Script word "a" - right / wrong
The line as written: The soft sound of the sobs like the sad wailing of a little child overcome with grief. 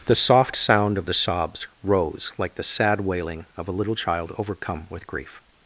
right